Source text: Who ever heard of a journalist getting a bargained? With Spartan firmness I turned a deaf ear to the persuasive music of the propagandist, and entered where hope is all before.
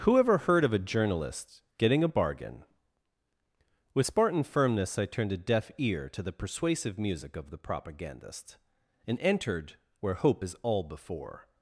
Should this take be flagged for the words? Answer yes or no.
yes